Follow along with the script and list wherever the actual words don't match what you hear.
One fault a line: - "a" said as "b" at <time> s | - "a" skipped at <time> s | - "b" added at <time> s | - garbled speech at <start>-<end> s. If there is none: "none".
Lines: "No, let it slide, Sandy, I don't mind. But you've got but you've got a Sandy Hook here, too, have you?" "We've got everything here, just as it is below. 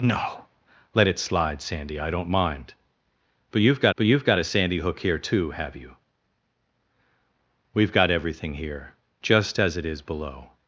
none